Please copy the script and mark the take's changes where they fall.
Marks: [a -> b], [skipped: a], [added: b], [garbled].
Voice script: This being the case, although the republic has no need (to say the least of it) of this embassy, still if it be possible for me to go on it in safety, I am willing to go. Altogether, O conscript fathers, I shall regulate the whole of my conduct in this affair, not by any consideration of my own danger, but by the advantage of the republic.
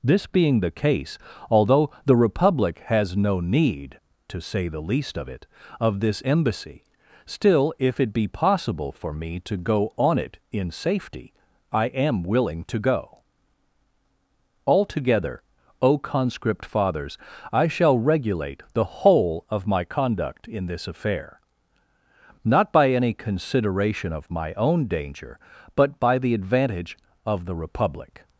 This being the case, although the republic has no need (to say the least of it) of this embassy, still if it be possible for me to go on it in safety, I am willing to go. Altogether, O conscript fathers, I shall regulate the whole of my conduct in this affair, not by any consideration of my own danger, but by the advantage of the republic.